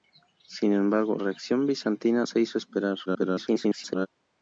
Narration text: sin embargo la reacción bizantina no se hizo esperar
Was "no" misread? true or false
true